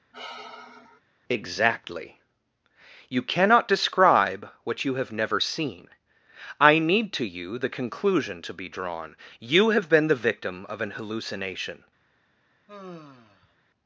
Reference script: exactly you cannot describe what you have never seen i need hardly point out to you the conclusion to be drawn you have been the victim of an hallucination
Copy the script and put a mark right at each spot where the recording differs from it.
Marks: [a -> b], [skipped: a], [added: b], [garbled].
exactly you cannot describe what you have never seen i need [skipped: hardly point out] to you the conclusion to be drawn you have been the victim of an hallucination